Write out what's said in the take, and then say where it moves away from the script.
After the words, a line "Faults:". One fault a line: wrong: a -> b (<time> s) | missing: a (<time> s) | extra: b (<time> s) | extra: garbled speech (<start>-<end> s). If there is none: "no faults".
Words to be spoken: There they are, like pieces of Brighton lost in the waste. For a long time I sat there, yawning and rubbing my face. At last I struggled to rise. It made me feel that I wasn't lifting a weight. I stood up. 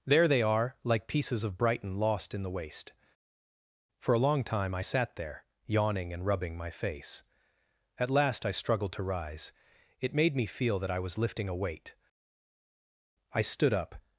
There they are, like pieces of Brighton lost in the waste. For a long time I sat there, yawning and rubbing my face. At last I struggled to rise. It made me feel that I was lifting a weight. I stood up.
Faults:
wrong: wasn't -> was (11.0 s)